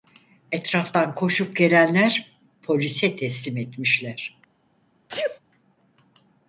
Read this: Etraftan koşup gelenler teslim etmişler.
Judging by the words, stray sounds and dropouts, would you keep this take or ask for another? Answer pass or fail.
fail